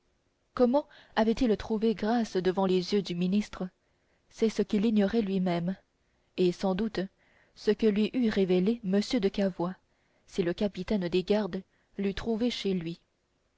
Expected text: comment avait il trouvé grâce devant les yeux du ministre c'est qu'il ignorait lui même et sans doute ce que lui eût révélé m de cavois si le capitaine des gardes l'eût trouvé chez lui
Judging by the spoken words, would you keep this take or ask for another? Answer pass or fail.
fail